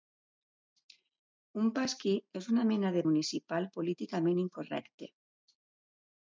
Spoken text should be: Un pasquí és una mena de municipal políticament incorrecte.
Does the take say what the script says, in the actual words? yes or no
yes